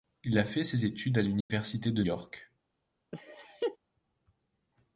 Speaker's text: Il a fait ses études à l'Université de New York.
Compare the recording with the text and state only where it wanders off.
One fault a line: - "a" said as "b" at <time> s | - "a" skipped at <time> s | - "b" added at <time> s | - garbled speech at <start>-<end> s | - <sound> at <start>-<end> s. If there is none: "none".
- dropout at 1.4-1.5 s
- "New" skipped at 2.0 s
- laugh at 3.1-3.8 s